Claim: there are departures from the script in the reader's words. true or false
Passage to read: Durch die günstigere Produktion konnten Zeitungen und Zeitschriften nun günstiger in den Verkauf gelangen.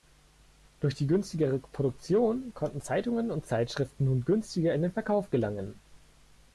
false